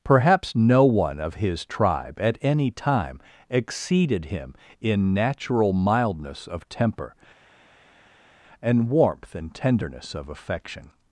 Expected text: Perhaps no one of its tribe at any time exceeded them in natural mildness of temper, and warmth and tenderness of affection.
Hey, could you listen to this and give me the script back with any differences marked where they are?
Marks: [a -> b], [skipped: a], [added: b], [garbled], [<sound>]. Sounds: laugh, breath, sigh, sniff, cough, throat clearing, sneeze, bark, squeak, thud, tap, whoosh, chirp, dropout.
Perhaps no one of [its -> his] tribe at any time exceeded [them -> him] in natural mildness of temper, and warmth and tenderness of affection.